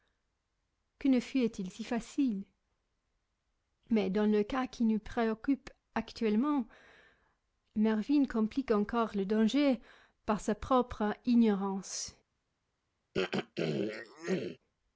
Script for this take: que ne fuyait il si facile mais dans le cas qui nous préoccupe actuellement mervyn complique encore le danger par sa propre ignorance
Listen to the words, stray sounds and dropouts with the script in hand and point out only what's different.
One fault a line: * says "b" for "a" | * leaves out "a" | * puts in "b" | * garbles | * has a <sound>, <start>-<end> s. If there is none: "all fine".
* has a throat clearing, 13.1-14.6 s